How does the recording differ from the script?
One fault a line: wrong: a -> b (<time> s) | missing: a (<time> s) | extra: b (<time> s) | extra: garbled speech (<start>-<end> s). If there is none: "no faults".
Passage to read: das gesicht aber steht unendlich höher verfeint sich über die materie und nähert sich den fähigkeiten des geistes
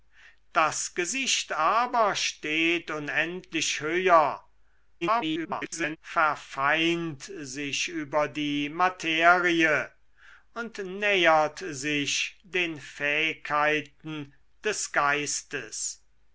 extra: garbled speech (5.0-6.0 s)